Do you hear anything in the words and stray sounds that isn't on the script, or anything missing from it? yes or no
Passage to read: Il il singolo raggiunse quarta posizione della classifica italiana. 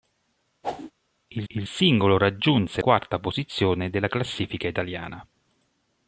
yes